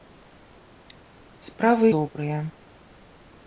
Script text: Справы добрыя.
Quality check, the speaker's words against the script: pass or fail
pass